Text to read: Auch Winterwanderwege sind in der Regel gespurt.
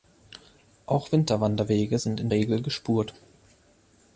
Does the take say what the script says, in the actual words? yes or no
no